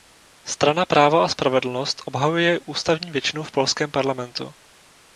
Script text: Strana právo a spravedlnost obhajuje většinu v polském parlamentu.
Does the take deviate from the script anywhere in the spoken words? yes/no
yes